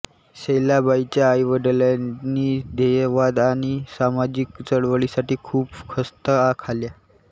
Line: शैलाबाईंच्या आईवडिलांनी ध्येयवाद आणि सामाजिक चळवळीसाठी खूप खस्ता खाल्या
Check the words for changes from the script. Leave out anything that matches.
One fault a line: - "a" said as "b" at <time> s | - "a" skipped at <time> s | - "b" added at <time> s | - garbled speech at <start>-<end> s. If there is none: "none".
none